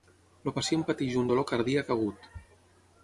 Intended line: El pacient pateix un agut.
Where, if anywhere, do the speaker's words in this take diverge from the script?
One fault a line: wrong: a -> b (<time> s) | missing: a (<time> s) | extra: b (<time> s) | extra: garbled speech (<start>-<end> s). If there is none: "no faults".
extra: dolor cardíac (1.3 s)